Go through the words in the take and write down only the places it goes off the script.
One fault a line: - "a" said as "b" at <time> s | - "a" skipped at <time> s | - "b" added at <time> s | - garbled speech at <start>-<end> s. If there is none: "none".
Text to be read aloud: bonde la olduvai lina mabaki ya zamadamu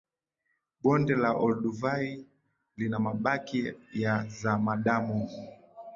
none